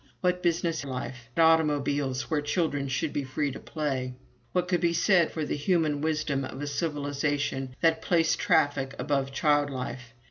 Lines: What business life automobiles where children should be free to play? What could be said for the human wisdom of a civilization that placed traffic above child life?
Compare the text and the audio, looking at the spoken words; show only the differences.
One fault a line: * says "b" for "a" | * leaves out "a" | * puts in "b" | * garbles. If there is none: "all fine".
all fine